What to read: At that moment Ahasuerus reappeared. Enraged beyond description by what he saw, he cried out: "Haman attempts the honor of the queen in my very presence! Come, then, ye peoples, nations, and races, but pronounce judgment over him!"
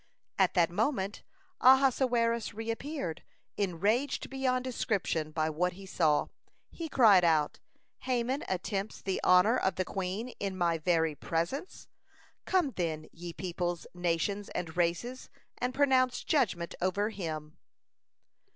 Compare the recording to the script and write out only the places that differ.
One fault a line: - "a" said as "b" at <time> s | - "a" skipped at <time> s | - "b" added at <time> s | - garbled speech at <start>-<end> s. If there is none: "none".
- "but" said as "and" at 15.6 s